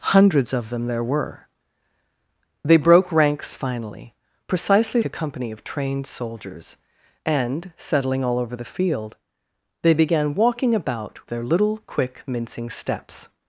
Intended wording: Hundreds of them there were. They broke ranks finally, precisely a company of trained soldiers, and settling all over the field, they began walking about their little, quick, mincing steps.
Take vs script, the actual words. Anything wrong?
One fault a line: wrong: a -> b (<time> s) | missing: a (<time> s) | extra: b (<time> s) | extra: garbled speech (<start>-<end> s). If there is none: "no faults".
no faults